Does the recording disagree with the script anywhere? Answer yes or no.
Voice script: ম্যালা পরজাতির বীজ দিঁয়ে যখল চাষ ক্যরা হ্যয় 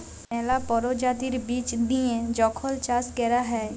no